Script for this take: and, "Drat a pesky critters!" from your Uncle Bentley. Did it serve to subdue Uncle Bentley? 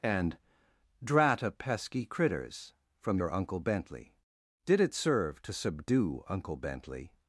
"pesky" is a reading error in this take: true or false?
false